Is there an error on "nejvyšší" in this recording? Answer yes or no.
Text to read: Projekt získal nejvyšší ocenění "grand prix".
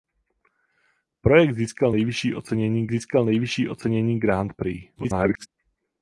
no